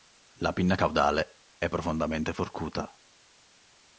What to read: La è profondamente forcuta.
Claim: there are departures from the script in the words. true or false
true